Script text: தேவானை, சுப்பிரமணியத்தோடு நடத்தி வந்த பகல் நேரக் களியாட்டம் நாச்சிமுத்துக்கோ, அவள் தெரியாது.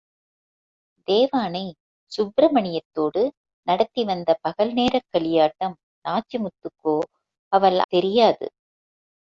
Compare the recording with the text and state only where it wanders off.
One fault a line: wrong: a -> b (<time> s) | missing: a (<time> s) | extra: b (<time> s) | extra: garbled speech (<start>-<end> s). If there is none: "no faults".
no faults